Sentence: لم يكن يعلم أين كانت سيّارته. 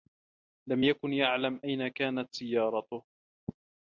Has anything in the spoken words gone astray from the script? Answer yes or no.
no